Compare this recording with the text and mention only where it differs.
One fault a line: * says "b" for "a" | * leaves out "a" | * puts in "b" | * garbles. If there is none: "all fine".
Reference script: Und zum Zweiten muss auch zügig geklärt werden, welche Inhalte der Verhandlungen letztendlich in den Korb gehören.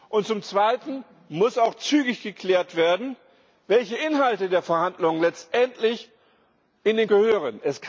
* leaves out "Korb"